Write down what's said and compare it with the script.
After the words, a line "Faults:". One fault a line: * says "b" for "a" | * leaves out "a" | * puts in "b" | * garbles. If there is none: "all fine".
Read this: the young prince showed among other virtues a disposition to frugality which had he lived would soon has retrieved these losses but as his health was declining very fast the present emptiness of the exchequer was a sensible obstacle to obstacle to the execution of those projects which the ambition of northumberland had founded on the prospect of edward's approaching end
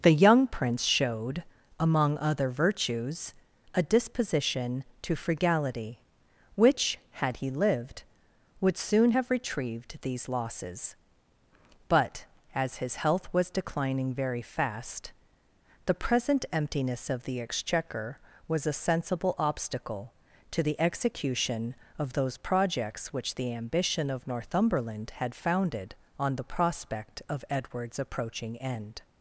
the young prince showed among other virtues a disposition to frugality which had he lived would soon have retrieved these losses but as his health was declining very fast the present emptiness of the exchequer was a sensible obstacle to the execution of those projects which the ambition of northumberland had founded on the prospect of edward's approaching end
Faults:
* says "have" for "has"
* leaves out "obstacle to"